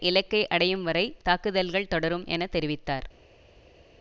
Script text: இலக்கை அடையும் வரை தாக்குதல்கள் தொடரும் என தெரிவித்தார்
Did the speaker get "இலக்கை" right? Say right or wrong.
right